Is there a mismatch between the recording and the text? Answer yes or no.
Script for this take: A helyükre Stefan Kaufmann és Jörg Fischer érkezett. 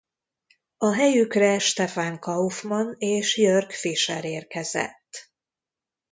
no